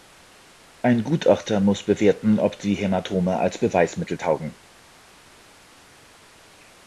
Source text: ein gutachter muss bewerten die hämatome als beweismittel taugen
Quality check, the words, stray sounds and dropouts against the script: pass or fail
fail